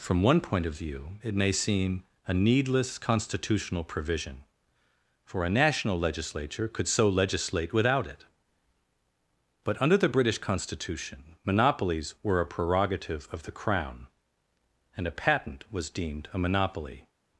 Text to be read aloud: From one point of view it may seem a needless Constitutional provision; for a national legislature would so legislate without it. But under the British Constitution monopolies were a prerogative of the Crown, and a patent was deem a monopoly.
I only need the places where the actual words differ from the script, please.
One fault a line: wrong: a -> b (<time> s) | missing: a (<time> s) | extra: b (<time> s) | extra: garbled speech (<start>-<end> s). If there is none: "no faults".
wrong: would -> could (6.7 s)
wrong: deem -> deemed (15.9 s)